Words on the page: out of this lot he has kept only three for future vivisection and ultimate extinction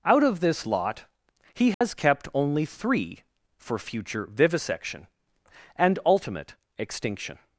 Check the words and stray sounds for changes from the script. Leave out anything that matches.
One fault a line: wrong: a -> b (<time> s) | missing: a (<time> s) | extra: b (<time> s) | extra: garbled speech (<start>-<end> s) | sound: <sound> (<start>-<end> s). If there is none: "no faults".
sound: dropout (1.7-1.8 s)